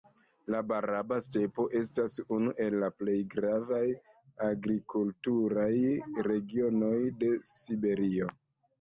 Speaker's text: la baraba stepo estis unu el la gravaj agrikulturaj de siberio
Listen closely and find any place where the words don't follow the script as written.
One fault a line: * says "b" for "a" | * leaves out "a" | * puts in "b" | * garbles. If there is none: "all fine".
* says "estas" for "estis"
* puts in "plej"
* puts in "regionoj"